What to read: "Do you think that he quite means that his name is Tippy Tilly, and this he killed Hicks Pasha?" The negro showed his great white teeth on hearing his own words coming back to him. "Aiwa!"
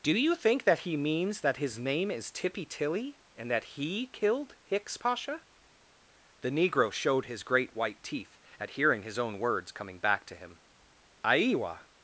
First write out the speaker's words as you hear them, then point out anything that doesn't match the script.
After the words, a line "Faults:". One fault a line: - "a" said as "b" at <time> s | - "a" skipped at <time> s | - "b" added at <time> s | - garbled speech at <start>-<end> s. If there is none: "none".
"Do you think that he means that his name is Tippy Tilly, and that he killed Hicks Pasha?" The negro showed his great white teeth at hearing his own words coming back to him. "Aiwa!"
Faults:
- "quite" skipped at 1.0 s
- "this" said as "that" at 3.5 s
- "on" said as "at" at 8.6 s